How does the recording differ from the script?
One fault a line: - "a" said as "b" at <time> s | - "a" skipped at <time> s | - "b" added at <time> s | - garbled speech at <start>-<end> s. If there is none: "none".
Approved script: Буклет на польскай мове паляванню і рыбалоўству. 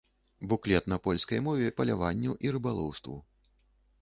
none